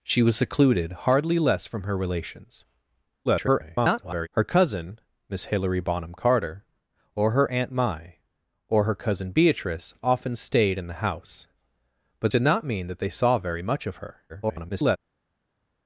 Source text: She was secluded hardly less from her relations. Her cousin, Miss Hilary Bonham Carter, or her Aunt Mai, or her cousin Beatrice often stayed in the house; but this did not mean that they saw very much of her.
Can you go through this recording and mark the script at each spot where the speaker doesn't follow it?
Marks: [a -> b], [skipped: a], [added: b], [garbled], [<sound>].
She was secluded hardly less from her relations. [garbled] Her cousin, Miss Hilary Bonham Carter, or her Aunt Mai, or her cousin Beatrice often stayed in the house; but [skipped: this] did not mean that they saw very much of her. [garbled]